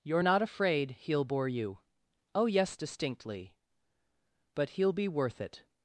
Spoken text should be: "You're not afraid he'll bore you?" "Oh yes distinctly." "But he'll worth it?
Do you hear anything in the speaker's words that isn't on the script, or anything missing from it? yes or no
yes